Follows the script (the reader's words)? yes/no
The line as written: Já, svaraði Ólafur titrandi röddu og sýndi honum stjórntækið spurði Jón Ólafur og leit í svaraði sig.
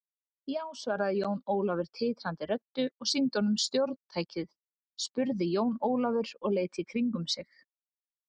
no